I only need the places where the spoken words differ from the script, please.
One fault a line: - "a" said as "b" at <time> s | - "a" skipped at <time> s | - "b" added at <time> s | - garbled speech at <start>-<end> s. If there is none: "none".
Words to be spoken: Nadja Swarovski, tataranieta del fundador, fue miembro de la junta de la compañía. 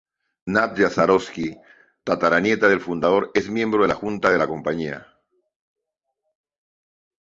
- "fue" said as "es" at 3.4 s